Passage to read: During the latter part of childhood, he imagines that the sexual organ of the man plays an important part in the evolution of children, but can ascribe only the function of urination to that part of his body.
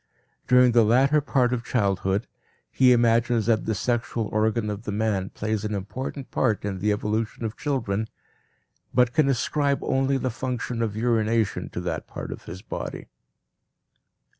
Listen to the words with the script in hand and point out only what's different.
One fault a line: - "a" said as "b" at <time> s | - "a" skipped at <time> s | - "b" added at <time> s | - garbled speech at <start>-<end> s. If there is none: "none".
none